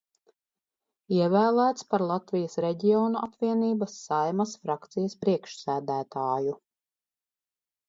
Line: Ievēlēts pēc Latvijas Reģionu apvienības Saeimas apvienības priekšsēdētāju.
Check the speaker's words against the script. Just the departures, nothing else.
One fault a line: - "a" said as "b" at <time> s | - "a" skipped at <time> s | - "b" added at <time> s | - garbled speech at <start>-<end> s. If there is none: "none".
- "pēc" said as "par" at 1.9 s
- "apvienības" said as "frakcijas" at 4.6 s